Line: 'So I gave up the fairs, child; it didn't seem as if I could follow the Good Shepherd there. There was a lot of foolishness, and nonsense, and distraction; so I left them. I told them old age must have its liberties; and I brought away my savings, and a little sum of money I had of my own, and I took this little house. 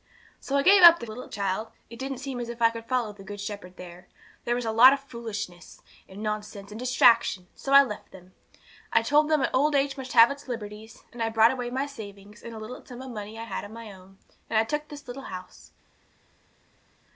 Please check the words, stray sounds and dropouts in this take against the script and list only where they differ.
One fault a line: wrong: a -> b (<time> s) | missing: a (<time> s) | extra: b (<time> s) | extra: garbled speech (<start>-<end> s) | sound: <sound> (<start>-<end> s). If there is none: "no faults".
wrong: fairs -> little (1.1 s)